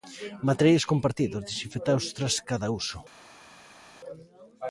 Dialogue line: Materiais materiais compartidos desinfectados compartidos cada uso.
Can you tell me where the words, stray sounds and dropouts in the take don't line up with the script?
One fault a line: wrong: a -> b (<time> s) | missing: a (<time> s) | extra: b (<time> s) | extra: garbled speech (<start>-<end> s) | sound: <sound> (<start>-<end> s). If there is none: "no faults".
missing: materiais (0.8 s)
wrong: compartidos -> tras (2.1 s)